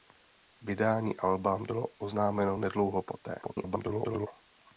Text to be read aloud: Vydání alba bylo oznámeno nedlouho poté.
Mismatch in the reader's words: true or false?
true